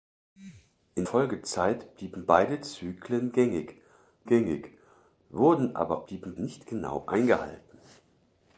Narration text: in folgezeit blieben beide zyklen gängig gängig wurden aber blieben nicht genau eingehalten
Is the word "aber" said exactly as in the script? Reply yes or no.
yes